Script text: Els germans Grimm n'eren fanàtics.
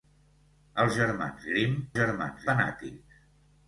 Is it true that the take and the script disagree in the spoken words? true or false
true